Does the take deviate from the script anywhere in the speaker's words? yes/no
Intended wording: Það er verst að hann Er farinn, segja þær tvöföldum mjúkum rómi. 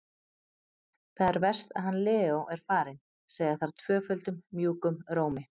yes